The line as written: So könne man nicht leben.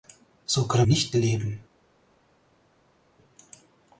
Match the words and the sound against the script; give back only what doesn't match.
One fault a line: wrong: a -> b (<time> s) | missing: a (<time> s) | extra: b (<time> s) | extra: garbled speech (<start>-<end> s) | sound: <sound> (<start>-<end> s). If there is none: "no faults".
missing: man (0.8 s)